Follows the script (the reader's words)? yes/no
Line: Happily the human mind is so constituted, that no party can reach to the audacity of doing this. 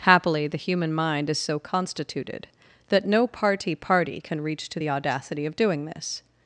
no